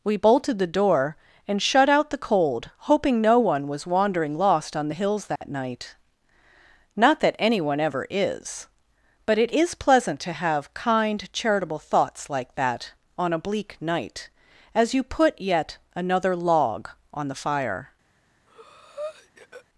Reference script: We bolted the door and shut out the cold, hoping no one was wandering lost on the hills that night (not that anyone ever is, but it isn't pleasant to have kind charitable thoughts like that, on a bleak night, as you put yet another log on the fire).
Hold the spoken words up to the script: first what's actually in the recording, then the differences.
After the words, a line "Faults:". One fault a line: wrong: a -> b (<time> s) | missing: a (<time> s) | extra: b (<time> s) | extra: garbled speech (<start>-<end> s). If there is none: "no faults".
We bolted the door and shut out the cold, hoping no one was wandering lost on the hills that night (not that anyone ever is, but it is pleasant to have kind charitable thoughts like that, on a bleak night, as you put yet another log on the fire).
Faults:
wrong: isn't -> is (9.5 s)